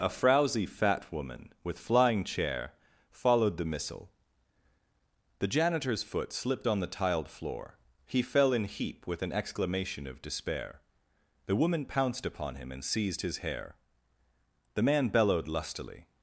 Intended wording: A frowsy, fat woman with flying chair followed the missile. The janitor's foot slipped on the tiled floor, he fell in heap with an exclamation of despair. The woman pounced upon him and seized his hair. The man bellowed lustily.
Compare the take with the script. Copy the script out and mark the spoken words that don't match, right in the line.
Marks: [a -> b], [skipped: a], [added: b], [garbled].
A frowsy, fat woman with flying chair followed the missile. The janitor's foot slipped on the tiled floor, he fell in heap with an exclamation of despair. The woman pounced upon him and seized his hair. The man bellowed lustily.